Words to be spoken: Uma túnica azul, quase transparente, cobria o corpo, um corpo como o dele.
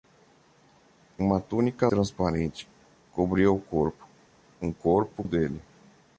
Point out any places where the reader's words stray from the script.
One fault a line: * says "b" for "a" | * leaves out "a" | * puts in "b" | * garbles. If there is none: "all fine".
* leaves out "azul quase"
* leaves out "como"